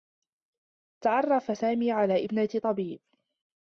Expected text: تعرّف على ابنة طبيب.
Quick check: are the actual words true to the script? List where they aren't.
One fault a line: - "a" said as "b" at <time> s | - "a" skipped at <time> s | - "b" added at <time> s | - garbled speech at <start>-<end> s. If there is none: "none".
- "سامي" added at 1.5 s